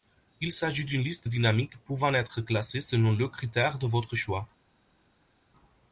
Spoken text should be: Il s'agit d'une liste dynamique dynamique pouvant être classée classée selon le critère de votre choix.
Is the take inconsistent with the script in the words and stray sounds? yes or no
yes